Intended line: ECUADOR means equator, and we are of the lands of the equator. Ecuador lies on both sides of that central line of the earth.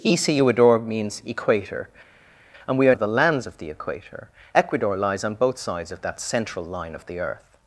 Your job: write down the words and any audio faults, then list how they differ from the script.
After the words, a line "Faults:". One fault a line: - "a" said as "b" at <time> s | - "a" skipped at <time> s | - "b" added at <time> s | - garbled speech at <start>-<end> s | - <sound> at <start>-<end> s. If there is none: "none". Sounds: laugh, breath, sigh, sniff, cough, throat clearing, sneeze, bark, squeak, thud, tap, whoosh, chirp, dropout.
ECUADOR means equator, and we are of the lands of the equator. Ecuador lies on both sides of that central line of the earth.
Faults:
none